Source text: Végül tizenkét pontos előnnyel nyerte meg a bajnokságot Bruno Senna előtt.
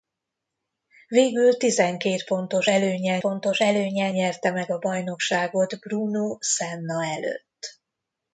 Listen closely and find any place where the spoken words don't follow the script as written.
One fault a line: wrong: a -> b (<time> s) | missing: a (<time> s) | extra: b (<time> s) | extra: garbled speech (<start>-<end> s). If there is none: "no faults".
extra: pontos előnnyel (3.2 s)